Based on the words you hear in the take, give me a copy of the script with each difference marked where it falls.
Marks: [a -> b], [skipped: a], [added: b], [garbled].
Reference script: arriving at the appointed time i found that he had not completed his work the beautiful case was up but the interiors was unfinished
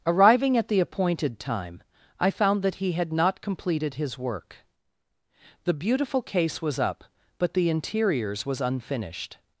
arriving at the appointed time i found that he had not completed his work the beautiful case was up but the interiors was unfinished